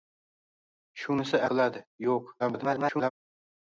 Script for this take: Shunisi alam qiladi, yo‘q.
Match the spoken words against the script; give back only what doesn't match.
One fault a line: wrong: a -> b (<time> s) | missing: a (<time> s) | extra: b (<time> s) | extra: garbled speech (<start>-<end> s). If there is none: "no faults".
missing: alam (1.4 s)
extra: garbled speech (2.4-3.1 s)